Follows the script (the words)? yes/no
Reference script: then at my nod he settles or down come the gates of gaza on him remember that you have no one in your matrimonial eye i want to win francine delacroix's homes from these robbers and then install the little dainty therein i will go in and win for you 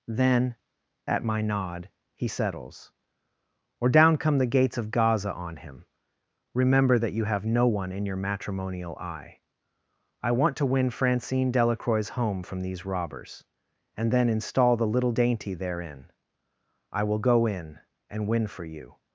no